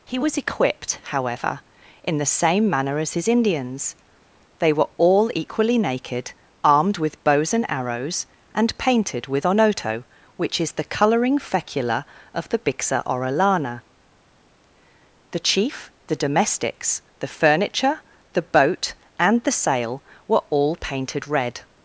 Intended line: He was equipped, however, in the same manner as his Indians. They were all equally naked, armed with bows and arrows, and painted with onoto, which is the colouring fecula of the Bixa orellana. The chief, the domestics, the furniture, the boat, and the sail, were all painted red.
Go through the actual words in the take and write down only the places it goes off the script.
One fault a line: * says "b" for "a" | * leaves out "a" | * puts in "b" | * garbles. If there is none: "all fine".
all fine